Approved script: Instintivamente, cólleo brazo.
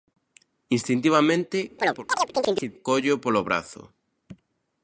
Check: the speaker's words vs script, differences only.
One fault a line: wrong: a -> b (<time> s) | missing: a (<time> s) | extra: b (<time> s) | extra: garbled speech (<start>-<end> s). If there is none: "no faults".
extra: polo (3.2 s)